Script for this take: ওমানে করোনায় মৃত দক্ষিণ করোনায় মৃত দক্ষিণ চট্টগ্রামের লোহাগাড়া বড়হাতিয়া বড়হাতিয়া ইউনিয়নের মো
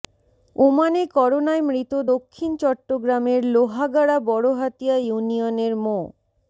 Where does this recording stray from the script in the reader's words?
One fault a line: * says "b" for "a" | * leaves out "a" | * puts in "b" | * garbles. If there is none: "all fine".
* leaves out "করোনায় মৃত দক্ষিণ"
* leaves out "বড়হাতিয়া"